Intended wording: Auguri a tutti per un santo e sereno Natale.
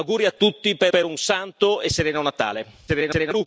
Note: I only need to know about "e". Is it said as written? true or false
true